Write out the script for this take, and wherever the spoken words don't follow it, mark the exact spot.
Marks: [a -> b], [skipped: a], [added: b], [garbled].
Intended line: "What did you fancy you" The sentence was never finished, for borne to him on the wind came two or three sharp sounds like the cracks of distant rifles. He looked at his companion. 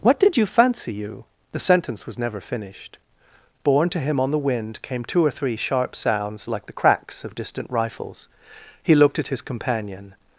"What did you fancy you" The sentence was never finished, [skipped: for] borne to him on the wind came two or three sharp sounds like the cracks of distant rifles. He looked at his companion.